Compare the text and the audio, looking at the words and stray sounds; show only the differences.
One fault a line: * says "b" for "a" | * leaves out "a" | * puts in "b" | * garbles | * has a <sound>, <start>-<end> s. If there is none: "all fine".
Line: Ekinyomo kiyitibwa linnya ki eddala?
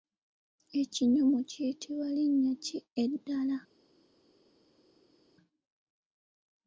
all fine